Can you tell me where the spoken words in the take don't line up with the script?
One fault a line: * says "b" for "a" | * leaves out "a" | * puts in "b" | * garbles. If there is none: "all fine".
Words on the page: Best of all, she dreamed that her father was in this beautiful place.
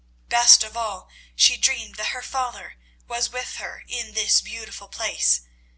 * puts in "with her"